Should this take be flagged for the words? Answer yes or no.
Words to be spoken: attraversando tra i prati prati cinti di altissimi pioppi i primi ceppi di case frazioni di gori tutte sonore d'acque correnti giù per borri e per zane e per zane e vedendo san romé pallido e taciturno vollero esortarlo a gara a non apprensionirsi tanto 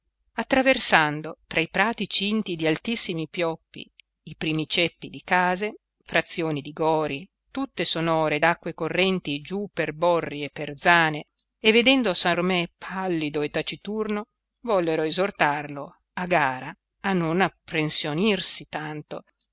yes